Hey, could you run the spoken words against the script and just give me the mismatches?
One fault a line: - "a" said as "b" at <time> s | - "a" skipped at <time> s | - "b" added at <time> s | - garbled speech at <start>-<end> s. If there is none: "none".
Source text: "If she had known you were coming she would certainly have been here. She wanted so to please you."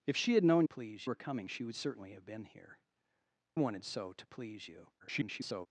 - "you" said as "please" at 0.6 s
- "She" skipped at 2.8 s
- garbled speech at 5.0-5.7 s